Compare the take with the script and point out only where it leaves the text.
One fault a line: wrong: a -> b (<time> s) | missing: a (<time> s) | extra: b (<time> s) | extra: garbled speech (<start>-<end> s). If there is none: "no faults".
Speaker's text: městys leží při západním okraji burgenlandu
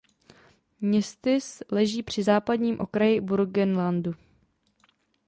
no faults